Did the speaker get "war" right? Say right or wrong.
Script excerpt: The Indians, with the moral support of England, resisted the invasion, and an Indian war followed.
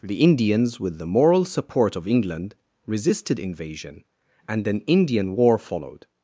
right